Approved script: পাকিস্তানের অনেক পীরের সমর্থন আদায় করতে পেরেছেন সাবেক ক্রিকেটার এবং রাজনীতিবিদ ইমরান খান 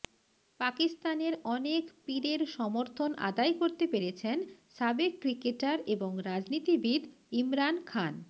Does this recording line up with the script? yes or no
yes